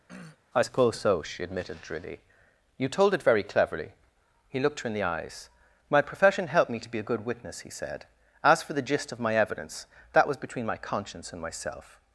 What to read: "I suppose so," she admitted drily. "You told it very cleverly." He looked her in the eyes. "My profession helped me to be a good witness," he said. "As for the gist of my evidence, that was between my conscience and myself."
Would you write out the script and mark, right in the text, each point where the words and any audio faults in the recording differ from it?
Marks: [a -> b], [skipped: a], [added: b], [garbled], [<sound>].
[throat clearing] "I suppose so," she admitted drily. "You told it very cleverly." He looked her in the eyes. "My profession helped me to be a good witness," he said. "As for the gist of my evidence, that was between my conscience and myself."